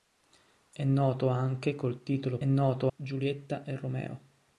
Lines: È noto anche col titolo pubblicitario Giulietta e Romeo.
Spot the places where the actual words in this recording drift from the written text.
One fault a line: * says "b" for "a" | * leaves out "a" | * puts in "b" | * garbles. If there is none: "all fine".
* says "noto" for "pubblicitario"